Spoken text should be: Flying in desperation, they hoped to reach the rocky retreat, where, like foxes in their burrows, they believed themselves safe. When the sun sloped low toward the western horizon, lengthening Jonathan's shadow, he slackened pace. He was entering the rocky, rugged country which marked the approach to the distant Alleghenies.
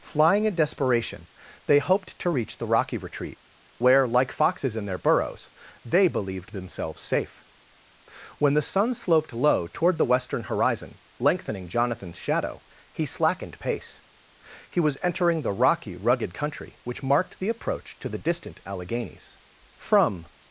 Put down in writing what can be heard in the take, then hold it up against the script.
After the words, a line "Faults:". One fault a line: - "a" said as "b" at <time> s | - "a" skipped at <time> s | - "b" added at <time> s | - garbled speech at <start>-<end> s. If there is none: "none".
Flying in desperation, they hoped to reach the rocky retreat, where, like foxes in their burrows, they believed themselves safe. When the sun sloped low toward the western horizon, lengthening Jonathan's shadow, he slackened pace. He was entering the rocky, rugged country which marked the approach to the distant Alleghenies. From
Faults:
- "From" added at 19.8 s